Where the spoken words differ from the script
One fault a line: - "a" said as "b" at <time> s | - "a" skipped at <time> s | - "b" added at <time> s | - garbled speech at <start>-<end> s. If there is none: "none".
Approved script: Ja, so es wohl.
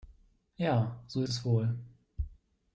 none